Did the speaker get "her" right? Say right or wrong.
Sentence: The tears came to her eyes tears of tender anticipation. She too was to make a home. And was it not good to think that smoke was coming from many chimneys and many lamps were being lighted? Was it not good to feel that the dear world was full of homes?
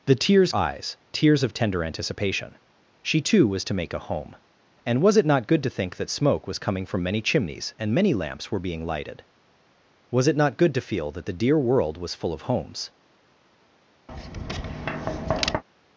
wrong